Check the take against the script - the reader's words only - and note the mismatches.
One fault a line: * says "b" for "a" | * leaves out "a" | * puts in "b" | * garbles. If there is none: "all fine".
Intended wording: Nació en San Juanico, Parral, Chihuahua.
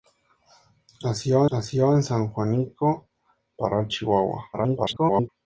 * puts in "nació"
* garbles